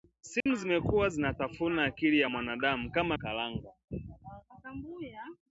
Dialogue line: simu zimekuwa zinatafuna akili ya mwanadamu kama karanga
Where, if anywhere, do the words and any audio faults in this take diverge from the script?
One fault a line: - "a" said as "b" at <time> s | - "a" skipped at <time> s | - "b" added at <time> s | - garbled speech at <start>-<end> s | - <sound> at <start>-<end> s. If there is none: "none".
- dropout at 0.4-0.5 s